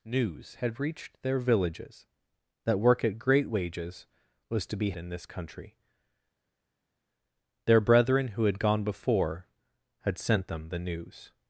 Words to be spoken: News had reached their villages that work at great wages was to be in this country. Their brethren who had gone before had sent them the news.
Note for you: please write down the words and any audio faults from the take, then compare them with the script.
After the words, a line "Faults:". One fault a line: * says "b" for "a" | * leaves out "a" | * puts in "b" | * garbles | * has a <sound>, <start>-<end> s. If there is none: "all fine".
News had reached their villages that work at great wages was to be in this country. Their brethren who had gone before had sent them the news.
Faults:
all fine